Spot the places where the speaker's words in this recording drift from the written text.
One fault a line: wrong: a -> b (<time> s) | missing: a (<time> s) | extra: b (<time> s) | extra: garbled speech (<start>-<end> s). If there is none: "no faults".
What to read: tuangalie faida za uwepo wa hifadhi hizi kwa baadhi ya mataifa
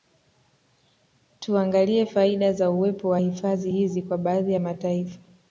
no faults